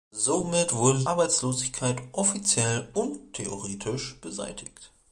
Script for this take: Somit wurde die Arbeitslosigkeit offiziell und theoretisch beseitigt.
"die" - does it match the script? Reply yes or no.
no